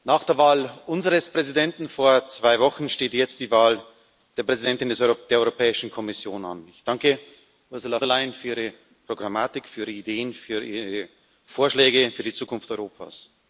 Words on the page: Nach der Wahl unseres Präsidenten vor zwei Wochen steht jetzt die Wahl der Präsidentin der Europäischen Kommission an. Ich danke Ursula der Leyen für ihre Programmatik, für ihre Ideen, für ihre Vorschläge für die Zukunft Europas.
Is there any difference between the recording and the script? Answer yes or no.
no